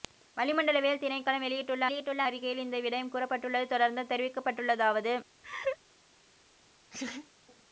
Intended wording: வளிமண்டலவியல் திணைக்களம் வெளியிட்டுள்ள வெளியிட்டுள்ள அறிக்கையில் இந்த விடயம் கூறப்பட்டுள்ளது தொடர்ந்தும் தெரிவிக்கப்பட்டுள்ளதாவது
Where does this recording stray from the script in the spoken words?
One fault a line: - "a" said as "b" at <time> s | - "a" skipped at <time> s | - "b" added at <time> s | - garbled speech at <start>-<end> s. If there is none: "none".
none